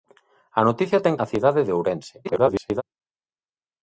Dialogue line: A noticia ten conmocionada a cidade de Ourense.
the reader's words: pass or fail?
fail